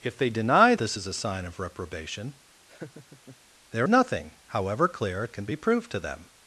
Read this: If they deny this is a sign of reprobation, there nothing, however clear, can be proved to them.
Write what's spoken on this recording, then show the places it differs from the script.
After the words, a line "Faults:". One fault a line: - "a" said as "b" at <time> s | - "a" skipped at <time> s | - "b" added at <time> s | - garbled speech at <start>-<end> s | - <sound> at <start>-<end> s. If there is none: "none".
If they deny this is a sign of reprobation, there nothing, however clear, can be proved to them.
Faults:
- laugh at 2.7-3.4 s